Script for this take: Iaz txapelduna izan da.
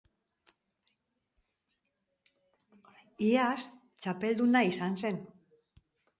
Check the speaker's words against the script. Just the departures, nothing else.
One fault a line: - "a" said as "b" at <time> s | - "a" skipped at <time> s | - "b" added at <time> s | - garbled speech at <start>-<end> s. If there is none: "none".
- "da" said as "zen" at 5.0 s